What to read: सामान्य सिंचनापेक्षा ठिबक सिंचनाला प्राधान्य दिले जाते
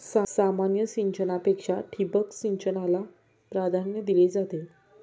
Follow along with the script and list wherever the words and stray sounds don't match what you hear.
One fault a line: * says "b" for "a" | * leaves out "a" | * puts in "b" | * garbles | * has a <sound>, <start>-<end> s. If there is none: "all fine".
all fine